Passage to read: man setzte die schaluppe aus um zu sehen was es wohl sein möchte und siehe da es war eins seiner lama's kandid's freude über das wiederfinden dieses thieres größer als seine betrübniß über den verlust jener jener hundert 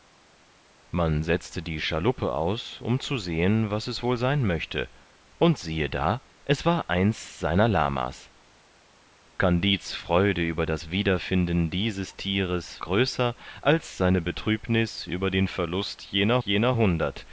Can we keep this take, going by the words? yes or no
yes